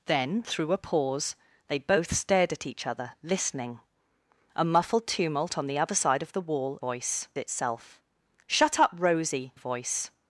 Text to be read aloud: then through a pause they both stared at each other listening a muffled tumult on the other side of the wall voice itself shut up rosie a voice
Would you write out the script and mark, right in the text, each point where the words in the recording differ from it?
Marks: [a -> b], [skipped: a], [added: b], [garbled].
then through a pause they both stared at each other listening a muffled tumult on the other side of the wall voice itself shut up rosie a voice